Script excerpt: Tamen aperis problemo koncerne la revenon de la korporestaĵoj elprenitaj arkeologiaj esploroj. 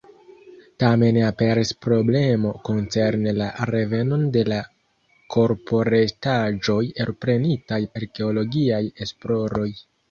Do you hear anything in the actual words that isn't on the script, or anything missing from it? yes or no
no